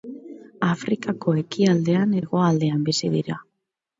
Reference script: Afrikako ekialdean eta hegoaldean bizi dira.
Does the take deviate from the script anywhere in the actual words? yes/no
yes